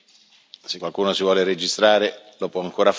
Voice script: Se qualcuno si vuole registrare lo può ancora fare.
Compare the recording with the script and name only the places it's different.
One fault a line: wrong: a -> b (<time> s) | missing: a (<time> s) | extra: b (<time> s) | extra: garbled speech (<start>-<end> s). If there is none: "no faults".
no faults